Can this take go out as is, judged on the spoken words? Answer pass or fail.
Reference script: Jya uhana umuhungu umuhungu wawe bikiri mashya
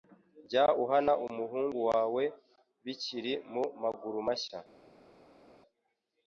fail